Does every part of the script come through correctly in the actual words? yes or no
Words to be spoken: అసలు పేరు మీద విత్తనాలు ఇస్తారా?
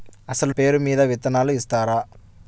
yes